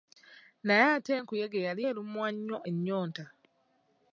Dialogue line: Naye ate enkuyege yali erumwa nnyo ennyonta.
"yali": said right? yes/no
yes